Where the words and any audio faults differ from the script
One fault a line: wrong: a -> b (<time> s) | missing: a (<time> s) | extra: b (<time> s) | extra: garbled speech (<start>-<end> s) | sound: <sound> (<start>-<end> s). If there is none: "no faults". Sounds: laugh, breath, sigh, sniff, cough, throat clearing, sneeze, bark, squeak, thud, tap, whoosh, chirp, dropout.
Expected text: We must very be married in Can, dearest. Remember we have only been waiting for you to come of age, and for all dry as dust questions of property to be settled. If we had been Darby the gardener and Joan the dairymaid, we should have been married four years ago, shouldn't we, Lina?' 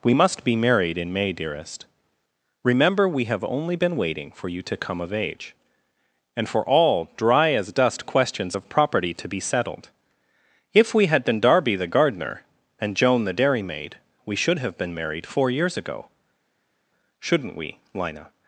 missing: very (0.4 s)
wrong: Can -> May (1.1 s)